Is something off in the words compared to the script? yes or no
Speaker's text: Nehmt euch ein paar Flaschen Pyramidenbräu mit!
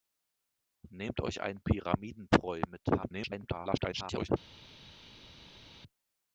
yes